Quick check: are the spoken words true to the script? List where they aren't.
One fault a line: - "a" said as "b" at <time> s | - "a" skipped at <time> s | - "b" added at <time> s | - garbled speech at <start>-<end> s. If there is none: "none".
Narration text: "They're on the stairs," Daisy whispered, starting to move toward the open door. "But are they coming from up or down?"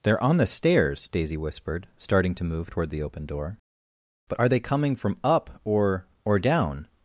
- "or" added at 6.3 s